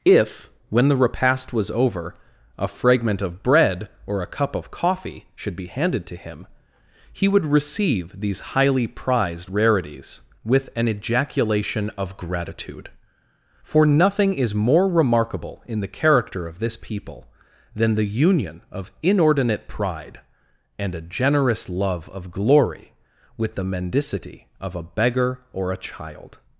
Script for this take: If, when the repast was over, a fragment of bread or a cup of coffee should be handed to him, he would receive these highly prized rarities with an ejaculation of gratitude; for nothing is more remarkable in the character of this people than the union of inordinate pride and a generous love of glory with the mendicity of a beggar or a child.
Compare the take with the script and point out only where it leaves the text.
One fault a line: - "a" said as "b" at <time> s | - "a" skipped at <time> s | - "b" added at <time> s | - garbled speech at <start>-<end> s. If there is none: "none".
none